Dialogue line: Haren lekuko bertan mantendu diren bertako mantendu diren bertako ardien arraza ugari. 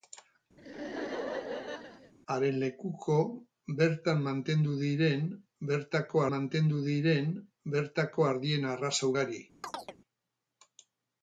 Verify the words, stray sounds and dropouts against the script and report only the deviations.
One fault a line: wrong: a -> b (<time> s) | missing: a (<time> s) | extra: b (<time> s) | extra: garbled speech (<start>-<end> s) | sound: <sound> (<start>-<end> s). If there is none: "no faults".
sound: laugh (0.6-2.1 s)
sound: chirp (9.6-10.0 s)